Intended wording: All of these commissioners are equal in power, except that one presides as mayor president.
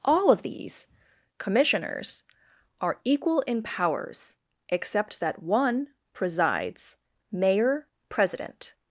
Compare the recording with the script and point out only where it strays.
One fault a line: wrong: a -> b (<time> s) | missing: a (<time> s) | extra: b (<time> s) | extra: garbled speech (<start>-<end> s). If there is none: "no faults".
wrong: power -> powers (3.6 s)
missing: as (7.0 s)